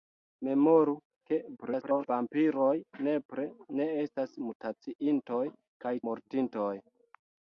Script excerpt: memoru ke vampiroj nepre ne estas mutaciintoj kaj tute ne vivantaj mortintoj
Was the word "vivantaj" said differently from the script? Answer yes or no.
yes